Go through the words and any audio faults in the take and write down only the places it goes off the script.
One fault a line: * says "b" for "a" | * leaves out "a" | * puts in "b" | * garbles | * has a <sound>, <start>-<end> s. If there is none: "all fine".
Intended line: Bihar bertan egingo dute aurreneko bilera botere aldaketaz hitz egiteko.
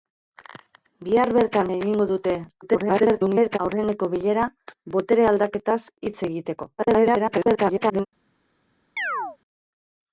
* garbles
* garbles
* has a chirp, 9.0-9.4 s